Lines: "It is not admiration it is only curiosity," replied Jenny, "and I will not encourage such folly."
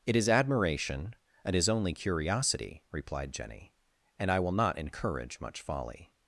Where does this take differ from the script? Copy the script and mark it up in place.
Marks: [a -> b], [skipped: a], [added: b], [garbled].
"It is [skipped: not] admiration it is only curiosity," replied Jenny, "and I will not encourage [such -> much] folly."